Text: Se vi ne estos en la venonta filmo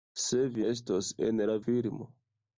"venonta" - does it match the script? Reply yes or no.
no